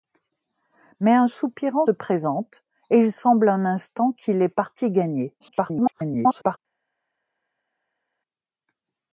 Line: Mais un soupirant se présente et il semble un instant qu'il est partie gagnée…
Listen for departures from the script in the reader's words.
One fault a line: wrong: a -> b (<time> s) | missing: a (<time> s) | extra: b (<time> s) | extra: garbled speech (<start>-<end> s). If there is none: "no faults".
missing: se (1.9 s)
extra: garbled speech (5.4-6.6 s)